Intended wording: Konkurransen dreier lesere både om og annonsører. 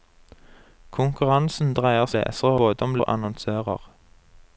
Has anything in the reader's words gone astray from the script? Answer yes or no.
no